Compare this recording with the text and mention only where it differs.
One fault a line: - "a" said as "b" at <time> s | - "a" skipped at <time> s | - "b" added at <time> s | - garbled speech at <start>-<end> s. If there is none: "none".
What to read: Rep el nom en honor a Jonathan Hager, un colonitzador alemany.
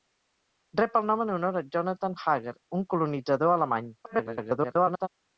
- garbled speech at 4.0-5.1 s